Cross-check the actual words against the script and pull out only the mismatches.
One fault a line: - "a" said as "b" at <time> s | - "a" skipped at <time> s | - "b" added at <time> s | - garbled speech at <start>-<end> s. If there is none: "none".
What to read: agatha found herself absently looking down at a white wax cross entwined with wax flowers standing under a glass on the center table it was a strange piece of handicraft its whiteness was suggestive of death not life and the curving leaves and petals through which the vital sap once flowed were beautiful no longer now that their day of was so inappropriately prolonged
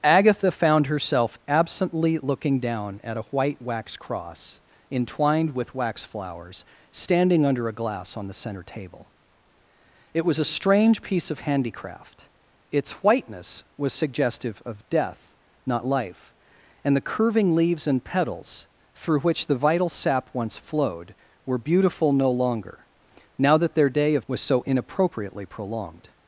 none